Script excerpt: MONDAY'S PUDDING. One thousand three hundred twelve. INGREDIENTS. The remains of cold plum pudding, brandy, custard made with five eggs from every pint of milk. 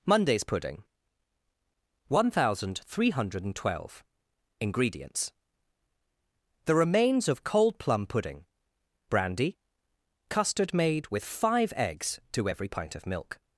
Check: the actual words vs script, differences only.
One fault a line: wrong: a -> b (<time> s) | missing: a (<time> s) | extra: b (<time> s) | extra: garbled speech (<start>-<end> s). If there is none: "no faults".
wrong: from -> to (12.3 s)